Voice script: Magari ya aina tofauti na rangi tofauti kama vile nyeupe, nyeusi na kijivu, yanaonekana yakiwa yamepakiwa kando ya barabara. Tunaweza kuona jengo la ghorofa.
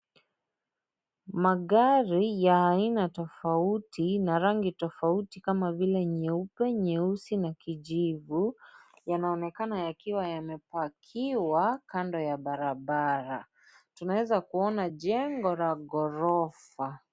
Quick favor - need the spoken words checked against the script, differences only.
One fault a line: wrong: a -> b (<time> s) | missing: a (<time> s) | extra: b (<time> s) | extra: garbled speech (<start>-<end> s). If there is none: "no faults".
no faults